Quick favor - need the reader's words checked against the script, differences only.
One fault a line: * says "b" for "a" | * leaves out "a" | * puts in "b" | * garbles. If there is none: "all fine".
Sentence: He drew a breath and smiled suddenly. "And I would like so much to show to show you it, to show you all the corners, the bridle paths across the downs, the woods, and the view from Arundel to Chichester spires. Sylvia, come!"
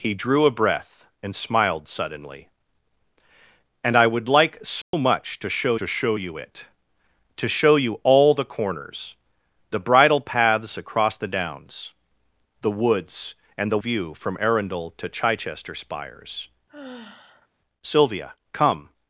all fine